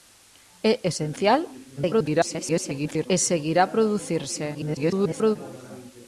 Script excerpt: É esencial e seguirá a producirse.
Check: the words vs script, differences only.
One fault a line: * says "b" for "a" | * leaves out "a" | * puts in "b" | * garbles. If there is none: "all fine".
* garbles
* garbles